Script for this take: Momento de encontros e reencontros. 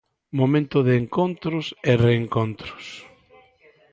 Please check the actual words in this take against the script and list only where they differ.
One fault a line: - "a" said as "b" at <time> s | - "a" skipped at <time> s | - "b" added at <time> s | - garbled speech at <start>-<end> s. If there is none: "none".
none